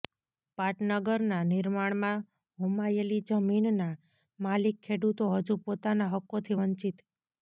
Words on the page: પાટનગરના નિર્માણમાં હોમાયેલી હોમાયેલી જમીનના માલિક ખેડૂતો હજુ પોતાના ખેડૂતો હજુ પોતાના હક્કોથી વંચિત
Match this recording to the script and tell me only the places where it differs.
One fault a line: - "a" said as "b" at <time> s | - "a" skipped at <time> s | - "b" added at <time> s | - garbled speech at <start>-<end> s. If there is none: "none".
- "હોમાયેલી" skipped at 3.2 s
- "ખેડૂતો હજુ પોતાના" skipped at 6.1 s